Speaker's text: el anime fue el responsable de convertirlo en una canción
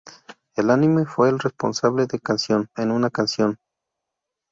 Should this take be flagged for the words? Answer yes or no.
yes